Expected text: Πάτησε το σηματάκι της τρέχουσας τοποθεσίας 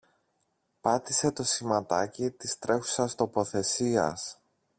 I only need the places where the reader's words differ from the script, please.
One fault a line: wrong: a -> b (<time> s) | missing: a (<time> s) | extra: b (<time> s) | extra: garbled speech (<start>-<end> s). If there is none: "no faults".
no faults